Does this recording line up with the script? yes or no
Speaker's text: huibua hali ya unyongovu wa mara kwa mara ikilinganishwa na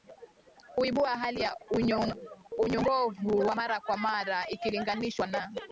yes